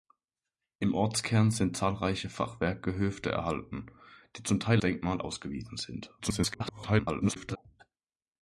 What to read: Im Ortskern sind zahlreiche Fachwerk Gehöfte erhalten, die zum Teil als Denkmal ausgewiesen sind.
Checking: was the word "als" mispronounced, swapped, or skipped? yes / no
yes